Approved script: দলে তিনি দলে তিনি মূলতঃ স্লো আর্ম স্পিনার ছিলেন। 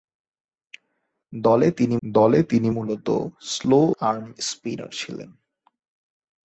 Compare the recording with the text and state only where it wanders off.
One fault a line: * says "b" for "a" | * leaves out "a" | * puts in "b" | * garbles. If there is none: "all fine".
all fine